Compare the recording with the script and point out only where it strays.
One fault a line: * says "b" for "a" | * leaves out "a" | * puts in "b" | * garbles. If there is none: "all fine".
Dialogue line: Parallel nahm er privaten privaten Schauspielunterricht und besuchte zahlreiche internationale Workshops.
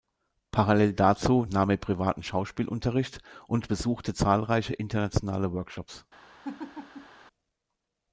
* puts in "dazu"
* leaves out "privaten"